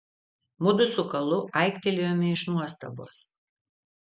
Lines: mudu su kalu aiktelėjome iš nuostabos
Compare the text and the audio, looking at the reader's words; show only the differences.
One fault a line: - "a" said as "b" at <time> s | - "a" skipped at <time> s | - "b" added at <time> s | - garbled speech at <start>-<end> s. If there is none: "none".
none